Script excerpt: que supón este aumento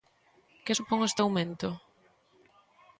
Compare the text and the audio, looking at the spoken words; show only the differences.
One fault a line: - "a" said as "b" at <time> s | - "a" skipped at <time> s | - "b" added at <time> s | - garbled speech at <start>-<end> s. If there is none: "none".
none